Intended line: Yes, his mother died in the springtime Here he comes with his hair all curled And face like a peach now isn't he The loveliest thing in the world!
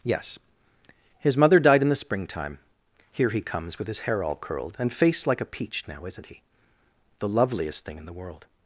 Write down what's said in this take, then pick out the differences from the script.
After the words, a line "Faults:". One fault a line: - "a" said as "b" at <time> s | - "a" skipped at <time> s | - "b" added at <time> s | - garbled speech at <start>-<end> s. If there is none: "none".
Yes, his mother died in the springtime Here he comes with his hair all curled And face like a peach now isn't he The loveliest thing in the world!
Faults:
none